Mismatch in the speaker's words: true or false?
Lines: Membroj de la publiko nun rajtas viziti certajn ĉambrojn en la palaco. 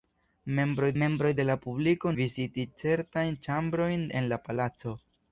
true